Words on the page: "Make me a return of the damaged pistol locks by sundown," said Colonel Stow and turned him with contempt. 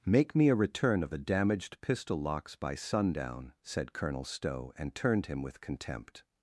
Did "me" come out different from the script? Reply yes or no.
no